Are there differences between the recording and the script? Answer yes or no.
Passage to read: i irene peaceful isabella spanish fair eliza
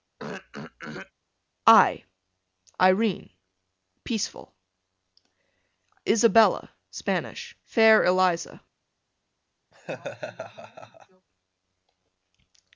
no